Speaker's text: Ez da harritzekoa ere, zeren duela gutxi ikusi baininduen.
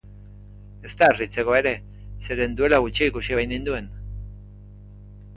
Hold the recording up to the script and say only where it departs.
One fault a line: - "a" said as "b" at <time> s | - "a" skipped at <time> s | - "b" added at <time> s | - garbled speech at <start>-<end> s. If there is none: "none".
none